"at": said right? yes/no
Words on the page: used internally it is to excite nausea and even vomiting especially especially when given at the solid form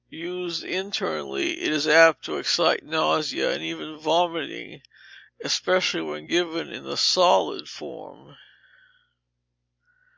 no